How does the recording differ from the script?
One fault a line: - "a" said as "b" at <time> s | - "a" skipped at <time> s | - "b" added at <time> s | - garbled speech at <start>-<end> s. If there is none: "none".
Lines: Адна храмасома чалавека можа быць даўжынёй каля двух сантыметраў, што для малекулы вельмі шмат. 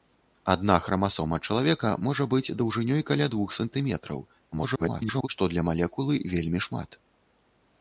- garbled speech at 4.5-5.3 s